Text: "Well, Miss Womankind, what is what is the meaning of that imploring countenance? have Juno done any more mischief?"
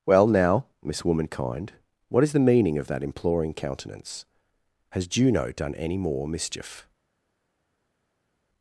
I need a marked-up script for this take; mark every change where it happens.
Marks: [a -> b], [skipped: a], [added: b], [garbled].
"Well, [added: now] Miss Womankind, what is [skipped: what is] the meaning of that imploring countenance? [have -> has] Juno done any more mischief?"